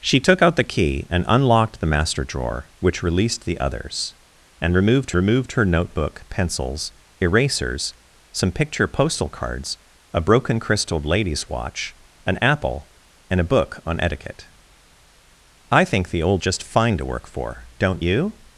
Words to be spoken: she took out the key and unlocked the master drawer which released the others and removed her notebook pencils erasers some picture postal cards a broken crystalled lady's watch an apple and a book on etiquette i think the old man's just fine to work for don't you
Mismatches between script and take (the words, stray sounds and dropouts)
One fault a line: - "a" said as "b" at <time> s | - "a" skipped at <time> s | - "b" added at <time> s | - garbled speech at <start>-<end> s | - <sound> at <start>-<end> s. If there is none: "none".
- "removed" added at 5.1 s
- "man's" skipped at 16.4 s